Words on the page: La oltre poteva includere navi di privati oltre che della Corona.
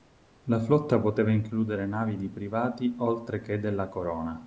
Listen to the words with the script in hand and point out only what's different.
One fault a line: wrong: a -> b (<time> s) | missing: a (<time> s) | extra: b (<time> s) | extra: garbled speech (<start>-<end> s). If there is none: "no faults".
wrong: oltre -> flotta (0.6 s)